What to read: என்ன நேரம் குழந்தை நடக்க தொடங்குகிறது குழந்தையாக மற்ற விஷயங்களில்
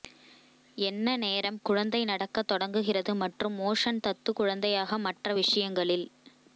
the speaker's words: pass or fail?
fail